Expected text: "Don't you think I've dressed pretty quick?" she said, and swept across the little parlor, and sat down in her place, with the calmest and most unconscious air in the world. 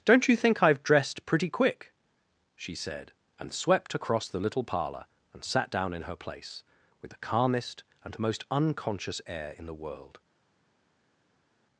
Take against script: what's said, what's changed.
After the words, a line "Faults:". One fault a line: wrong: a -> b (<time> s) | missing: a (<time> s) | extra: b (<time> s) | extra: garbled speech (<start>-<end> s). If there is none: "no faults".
"Don't you think I've dressed pretty quick?" she said, and swept across the little parlor, and sat down in her place, with the calmest and most unconscious air in the world.
Faults:
no faults